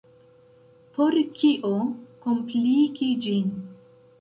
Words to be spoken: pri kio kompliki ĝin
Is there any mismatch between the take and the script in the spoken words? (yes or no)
yes